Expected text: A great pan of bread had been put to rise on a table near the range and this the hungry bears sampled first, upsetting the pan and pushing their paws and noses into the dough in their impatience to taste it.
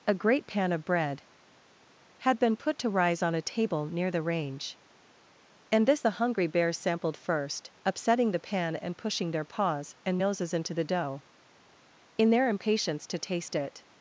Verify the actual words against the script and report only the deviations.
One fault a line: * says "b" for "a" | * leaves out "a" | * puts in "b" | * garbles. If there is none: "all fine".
all fine